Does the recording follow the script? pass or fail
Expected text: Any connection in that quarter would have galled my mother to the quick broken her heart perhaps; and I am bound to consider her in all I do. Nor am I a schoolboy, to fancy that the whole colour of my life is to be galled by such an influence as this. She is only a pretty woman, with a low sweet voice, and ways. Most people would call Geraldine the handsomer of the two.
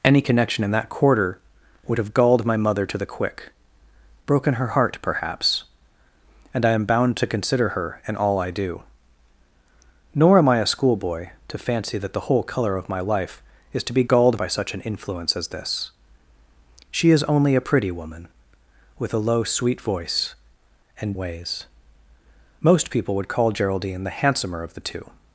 pass